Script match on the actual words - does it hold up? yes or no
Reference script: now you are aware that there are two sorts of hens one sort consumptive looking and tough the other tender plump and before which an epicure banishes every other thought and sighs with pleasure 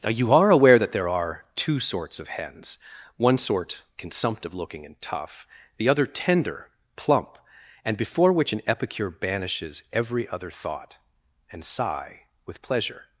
no